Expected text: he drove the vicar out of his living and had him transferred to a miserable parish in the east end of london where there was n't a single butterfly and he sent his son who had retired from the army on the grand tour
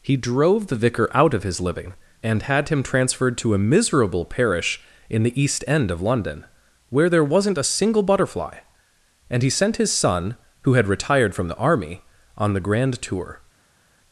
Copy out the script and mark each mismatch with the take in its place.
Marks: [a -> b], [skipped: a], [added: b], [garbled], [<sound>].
he drove the vicar out of his living and had him transferred to a miserable parish in the east end of london where there was n't a single butterfly and he sent his son who had retired from the army on the grand tour